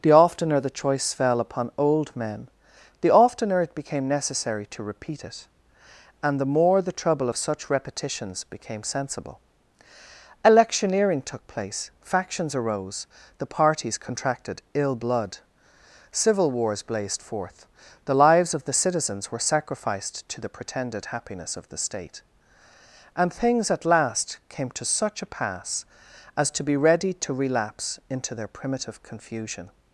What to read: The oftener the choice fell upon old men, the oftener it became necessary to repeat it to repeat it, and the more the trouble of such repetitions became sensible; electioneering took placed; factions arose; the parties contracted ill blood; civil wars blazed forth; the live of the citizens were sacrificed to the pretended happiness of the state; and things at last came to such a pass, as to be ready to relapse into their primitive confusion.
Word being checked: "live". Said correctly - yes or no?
no